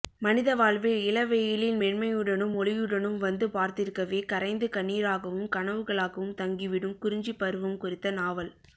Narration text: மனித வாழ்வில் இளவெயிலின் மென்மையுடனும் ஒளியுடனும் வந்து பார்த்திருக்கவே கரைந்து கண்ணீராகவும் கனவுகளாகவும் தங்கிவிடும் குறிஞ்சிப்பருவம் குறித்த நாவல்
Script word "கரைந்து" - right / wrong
right